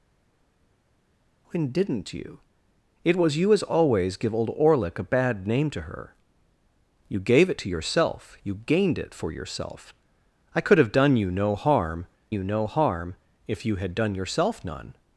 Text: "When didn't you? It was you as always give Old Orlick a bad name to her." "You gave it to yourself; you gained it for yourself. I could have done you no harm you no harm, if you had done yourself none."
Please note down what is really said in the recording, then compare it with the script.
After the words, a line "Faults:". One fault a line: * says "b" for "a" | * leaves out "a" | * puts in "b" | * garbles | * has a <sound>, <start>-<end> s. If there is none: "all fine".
"When didn't you? It was you as always give Old Orlick a bad name to her." "You gave it to yourself; you gained it for yourself. I could have done you no harm you no harm, if you had done yourself none."
Faults:
all fine